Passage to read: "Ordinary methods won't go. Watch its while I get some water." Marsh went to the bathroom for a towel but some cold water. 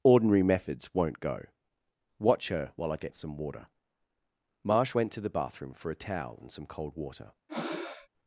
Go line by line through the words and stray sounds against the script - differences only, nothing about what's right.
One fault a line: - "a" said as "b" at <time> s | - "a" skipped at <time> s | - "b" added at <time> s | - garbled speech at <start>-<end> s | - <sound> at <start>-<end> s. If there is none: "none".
- "its" said as "her" at 2.5 s
- "but" said as "and" at 6.4 s
- breath at 7.5-8.1 s